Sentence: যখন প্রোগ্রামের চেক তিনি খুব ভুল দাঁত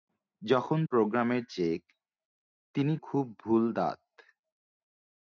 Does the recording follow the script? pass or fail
pass